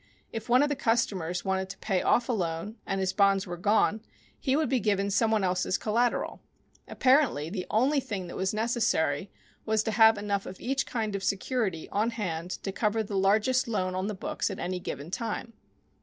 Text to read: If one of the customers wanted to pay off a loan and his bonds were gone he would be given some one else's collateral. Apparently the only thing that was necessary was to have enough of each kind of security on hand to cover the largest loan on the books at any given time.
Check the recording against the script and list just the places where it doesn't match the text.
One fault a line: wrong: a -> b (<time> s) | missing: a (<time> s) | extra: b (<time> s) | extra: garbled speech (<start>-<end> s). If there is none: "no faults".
no faults